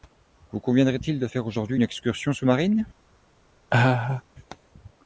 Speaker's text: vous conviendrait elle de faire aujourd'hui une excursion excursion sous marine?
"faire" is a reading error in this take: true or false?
false